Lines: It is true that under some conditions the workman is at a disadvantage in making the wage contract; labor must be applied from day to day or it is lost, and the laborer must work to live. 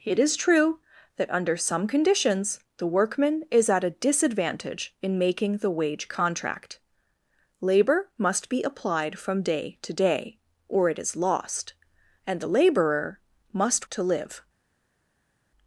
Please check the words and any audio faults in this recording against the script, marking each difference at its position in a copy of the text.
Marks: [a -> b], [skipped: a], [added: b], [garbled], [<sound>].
It is true that under some conditions the workman is at a disadvantage in making the wage contract; labor must be applied from day to day or it is lost, and the laborer must [skipped: work] to live.